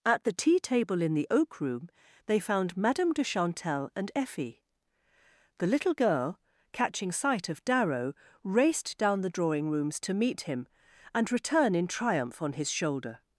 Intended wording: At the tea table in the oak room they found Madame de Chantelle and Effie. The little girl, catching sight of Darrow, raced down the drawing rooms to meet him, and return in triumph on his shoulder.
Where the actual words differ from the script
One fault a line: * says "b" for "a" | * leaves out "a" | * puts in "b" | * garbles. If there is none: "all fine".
all fine